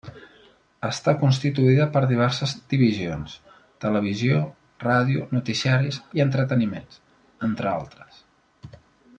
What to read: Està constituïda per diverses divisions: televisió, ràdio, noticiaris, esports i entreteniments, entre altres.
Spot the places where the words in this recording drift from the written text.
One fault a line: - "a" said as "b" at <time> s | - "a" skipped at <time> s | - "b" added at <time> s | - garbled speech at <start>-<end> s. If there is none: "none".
- "esports" skipped at 6.0 s